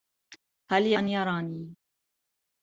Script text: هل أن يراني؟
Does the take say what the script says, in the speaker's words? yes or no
yes